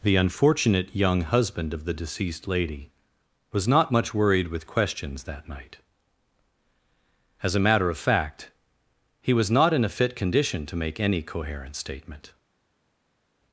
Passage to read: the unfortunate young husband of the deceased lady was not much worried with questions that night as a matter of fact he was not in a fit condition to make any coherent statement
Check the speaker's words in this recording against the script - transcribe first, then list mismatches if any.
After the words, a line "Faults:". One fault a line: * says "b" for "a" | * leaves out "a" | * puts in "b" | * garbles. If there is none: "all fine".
the unfortunate young husband of the deceased lady was not much worried with questions that night as a matter of fact he was not in a fit condition to make any coherent statement
Faults:
all fine